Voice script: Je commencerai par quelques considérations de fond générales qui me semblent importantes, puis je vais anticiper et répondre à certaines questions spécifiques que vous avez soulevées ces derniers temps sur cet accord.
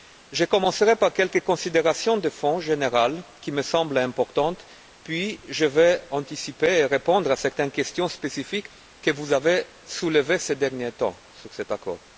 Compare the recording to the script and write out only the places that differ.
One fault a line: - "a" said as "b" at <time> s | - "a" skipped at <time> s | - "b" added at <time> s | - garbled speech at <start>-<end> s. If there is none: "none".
none